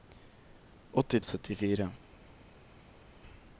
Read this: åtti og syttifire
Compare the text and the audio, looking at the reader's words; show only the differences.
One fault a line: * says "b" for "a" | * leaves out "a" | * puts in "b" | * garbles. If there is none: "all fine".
all fine